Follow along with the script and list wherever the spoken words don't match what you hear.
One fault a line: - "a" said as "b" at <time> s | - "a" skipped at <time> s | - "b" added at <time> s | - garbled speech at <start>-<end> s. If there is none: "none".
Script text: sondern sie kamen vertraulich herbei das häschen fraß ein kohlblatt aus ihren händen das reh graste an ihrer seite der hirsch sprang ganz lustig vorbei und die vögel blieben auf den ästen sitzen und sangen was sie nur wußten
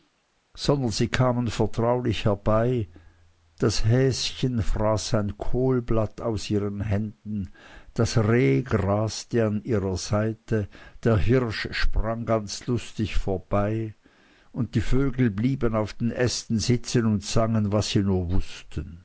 none